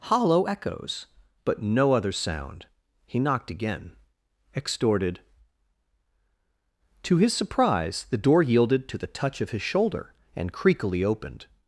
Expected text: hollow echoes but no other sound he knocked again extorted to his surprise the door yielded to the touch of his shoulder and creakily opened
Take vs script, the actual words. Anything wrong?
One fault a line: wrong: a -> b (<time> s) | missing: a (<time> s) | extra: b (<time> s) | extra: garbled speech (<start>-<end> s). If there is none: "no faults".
no faults